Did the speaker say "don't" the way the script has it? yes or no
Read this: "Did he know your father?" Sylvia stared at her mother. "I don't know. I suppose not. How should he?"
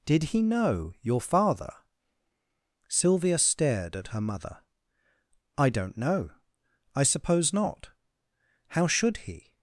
yes